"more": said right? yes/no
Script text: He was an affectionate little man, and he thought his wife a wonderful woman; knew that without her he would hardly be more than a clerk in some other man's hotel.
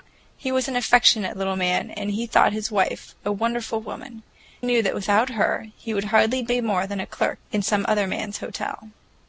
yes